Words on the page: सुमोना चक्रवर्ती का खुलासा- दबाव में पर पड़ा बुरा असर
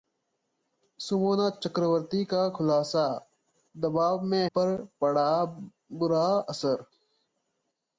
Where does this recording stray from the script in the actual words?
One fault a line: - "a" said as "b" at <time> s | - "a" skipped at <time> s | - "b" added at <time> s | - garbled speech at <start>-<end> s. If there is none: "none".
none